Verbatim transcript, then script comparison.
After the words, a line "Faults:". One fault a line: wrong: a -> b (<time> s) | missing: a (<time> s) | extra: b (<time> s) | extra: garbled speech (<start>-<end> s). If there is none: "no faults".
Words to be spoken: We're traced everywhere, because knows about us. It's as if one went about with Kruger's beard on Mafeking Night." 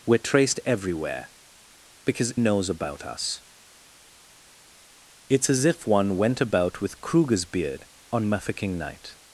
We're traced everywhere, because knows about us. It's as if one went about with Kruger's beard on Mafeking Night."
Faults:
no faults